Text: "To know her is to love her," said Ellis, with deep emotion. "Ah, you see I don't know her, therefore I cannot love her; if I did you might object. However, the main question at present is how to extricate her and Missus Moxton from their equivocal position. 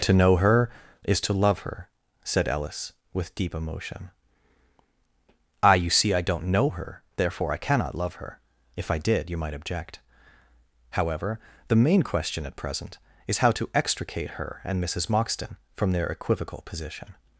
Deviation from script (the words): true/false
false